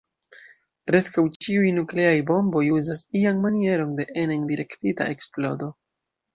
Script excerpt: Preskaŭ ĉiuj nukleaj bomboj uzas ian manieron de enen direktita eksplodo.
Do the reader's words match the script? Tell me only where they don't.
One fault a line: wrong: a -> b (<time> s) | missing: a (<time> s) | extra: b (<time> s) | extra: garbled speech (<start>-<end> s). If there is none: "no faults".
no faults